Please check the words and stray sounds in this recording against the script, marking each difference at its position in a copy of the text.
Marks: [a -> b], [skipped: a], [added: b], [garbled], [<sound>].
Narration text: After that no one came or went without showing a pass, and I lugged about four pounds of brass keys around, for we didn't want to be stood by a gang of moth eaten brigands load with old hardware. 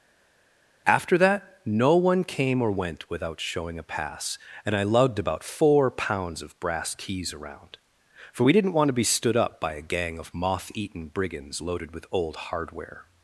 After that no one came or went without showing a pass, and I lugged about four pounds of brass keys around, for we didn't want to be stood [added: up] by a gang of moth eaten brigands [load -> loaded] with old hardware.